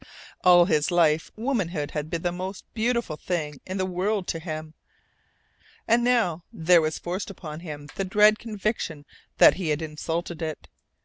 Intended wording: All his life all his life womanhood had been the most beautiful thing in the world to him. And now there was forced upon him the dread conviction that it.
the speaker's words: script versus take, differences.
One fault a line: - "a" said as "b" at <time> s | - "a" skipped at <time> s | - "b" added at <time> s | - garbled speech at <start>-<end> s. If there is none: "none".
- "all his life" skipped at 1.3 s
- "he had insulted" added at 9.5 s